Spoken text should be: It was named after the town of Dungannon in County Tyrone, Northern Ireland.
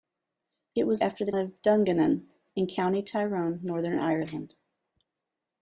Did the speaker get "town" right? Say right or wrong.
wrong